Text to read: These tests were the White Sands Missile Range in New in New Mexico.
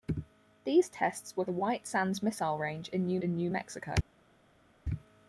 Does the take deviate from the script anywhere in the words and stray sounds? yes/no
no